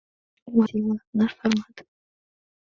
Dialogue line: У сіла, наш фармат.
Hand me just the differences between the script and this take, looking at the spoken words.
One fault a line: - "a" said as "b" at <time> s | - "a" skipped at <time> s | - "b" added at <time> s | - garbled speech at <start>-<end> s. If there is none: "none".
none